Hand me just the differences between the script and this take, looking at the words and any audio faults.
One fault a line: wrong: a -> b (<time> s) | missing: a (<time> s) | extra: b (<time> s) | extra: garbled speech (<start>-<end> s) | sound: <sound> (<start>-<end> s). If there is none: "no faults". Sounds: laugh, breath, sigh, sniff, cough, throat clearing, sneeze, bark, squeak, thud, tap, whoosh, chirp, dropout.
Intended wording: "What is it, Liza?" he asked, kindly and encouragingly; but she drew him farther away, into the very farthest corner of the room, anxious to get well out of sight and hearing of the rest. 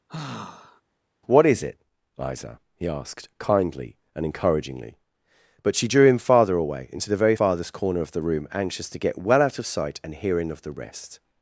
sound: sigh (0.1-0.8 s)